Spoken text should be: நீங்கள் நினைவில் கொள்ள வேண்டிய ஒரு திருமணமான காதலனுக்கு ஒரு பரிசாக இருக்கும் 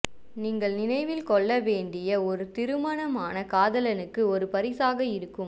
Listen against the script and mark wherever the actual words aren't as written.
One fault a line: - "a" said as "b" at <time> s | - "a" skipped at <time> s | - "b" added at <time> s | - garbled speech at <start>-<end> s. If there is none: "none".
none